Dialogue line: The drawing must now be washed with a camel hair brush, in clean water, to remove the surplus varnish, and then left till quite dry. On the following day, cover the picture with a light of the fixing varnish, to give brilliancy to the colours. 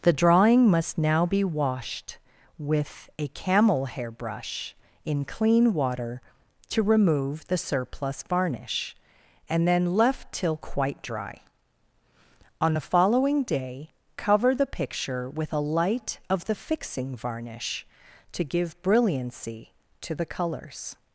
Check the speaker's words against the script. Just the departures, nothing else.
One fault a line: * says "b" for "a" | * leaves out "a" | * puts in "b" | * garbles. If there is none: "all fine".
all fine